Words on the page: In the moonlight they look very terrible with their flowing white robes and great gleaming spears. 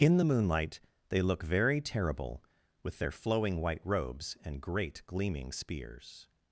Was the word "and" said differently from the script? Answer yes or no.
no